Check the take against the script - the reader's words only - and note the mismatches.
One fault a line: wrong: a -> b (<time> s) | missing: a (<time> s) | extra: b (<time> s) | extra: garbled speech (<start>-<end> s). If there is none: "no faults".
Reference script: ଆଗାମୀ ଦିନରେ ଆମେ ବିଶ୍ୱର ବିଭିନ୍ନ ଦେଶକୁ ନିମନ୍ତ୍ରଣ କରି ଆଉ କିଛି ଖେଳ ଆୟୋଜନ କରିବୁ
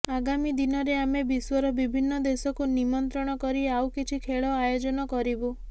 no faults